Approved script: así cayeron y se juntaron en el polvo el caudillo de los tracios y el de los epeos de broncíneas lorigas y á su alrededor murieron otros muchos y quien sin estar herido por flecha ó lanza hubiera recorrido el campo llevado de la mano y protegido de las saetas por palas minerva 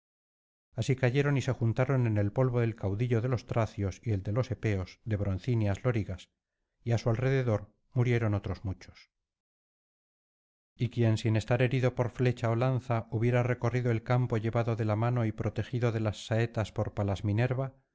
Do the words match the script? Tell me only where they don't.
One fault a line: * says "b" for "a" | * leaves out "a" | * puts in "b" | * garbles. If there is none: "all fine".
all fine